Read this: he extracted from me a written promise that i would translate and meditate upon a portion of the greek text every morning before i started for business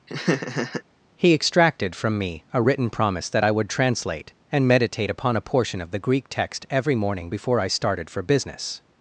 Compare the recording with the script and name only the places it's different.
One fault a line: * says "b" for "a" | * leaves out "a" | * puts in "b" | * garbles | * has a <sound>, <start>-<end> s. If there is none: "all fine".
* has a laugh, 0.1-0.8 s